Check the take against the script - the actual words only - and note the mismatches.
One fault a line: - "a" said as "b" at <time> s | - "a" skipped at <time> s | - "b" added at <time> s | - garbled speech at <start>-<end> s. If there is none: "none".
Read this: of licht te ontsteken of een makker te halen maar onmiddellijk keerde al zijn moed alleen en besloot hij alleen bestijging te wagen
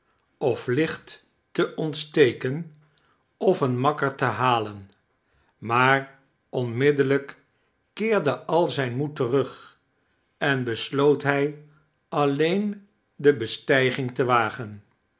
- "alleen" said as "terug" at 9.2 s
- "de" added at 13.2 s